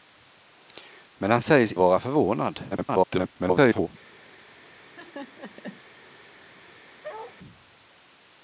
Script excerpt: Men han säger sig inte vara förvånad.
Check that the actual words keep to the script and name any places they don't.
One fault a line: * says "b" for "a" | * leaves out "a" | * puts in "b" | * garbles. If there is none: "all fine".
* leaves out "inte"
* garbles